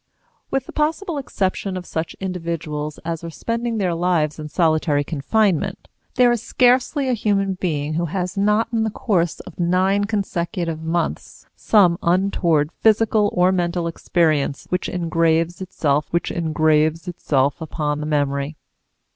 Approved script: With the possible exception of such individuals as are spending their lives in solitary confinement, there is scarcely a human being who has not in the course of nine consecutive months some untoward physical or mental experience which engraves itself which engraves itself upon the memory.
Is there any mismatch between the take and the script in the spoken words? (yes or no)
no